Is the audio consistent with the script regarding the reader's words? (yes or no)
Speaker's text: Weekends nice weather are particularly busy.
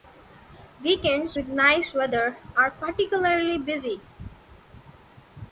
no